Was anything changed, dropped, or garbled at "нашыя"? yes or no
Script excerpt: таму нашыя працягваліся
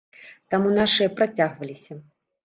no